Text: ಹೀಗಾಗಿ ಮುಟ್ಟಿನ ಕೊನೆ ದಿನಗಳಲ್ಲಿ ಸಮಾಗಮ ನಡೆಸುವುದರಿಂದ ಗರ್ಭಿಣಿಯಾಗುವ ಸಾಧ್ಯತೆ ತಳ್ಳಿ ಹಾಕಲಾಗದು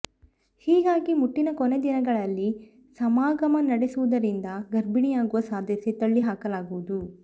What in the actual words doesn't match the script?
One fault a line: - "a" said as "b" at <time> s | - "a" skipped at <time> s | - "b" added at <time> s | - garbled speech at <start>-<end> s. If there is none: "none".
none